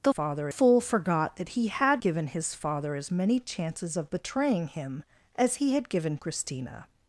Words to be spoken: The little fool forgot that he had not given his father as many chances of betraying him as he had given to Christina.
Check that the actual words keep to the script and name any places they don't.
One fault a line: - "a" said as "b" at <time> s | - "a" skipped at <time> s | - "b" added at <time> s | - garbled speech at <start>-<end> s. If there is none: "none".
- "little" said as "father" at 0.1 s
- "not" skipped at 2.0 s
- "to" skipped at 6.2 s